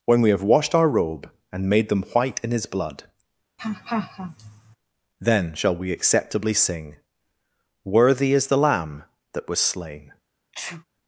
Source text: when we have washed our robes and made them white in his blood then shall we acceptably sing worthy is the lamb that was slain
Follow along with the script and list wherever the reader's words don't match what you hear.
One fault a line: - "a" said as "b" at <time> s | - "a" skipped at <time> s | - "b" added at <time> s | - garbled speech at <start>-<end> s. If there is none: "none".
- "robes" said as "robe" at 0.9 s